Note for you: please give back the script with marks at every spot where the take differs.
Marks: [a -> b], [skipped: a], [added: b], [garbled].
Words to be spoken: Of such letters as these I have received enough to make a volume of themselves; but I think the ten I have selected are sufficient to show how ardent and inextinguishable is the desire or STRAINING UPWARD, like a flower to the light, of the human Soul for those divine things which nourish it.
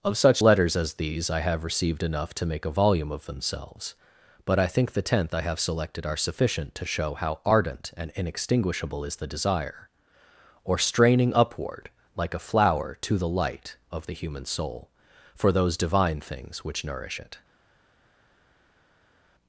Of such letters as these I have received enough to make a volume of themselves; but I think the [ten -> tenth] I have selected are sufficient to show how ardent and inextinguishable is the desire or STRAINING UPWARD, like a flower to the light, of the human Soul for those divine things which nourish it.